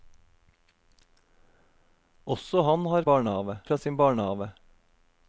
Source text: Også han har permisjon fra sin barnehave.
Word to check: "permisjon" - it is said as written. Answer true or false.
false